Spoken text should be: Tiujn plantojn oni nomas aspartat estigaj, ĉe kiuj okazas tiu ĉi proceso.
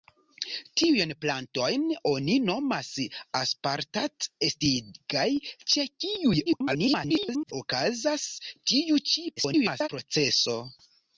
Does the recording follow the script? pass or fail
fail